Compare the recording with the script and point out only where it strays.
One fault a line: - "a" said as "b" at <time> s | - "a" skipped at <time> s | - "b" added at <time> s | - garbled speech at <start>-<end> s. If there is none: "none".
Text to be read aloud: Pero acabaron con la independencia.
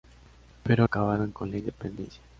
none